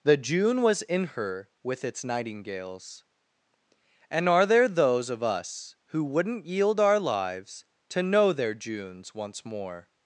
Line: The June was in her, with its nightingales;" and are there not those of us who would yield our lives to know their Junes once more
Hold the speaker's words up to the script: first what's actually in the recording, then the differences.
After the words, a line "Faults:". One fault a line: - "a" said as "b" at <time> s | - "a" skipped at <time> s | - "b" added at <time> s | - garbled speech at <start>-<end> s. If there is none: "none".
The June was in her, with its nightingales;" and are there those of us who wouldn't yield our lives to know their Junes once more
Faults:
- "not" skipped at 4.7 s
- "would" said as "wouldn't" at 6.0 s